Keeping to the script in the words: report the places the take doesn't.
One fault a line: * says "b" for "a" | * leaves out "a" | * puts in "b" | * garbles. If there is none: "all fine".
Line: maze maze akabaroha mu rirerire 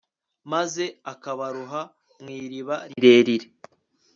* leaves out "maze"
* puts in "iriba"